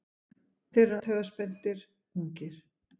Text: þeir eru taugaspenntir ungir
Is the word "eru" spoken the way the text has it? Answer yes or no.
yes